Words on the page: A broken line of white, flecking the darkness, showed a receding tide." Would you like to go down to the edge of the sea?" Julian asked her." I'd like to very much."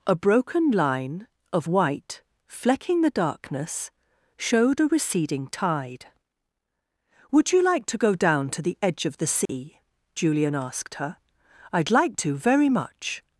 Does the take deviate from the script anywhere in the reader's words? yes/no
no